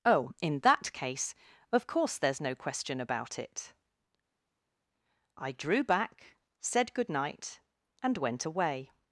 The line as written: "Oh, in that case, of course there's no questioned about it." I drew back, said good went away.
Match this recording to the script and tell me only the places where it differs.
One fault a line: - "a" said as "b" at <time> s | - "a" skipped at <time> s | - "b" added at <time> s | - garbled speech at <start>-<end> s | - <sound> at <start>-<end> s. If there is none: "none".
- "questioned" said as "question" at 2.5 s
- "night and" added at 7.1 s